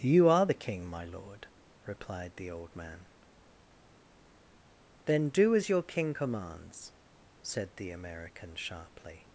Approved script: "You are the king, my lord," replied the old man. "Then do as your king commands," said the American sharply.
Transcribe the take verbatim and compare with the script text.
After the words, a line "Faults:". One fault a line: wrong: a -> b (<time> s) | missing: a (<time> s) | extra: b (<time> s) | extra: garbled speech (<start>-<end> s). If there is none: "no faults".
"You are the king, my lord," replied the old man. "Then do as your king commands," said the American sharply.
Faults:
no faults